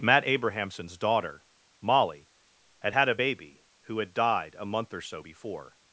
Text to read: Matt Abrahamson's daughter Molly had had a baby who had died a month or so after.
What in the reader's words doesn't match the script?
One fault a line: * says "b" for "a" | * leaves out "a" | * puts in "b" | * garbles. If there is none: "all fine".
* says "before" for "after"